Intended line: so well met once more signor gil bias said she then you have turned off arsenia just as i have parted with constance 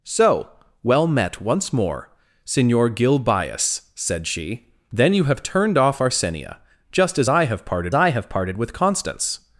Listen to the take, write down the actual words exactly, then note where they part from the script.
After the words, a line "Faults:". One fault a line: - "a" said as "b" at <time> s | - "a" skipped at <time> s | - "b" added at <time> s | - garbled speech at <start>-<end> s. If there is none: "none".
so well met once more signor gil bias said she then you have turned off arsenia just as i have parted i have parted with constance
Faults:
- "i have parted" added at 7.9 s